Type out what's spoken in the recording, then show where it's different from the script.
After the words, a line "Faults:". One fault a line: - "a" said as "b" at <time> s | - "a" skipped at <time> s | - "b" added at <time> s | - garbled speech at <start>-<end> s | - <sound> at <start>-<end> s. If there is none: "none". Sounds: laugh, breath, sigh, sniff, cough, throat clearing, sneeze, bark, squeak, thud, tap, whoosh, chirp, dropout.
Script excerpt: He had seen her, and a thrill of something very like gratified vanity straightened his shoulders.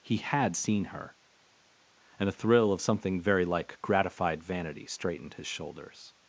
He had seen her, and a thrill of something very like gratified vanity straightened his shoulders.
Faults:
none